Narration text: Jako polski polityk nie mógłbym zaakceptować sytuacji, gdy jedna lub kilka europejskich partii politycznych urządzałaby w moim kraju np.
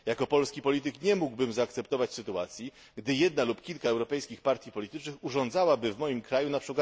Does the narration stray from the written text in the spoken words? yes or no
no